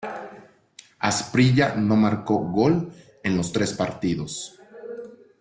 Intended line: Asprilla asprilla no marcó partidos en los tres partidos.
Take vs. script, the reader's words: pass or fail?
fail